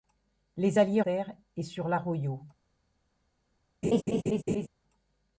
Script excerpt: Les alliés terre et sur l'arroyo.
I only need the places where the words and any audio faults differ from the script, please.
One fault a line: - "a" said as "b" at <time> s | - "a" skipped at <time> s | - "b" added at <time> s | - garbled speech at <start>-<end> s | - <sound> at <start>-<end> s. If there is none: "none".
- laugh at 3.8-4.7 s